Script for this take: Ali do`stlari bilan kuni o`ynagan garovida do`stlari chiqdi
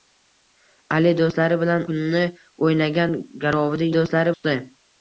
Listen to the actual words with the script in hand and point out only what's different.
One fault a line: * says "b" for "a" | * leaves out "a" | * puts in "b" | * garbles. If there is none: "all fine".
all fine